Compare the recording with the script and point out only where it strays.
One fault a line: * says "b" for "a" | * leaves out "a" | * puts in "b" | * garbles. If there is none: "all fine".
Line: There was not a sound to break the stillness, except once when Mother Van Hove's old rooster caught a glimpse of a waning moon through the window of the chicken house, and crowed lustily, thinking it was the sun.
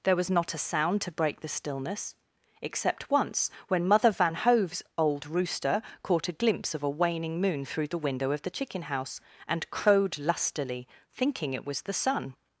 all fine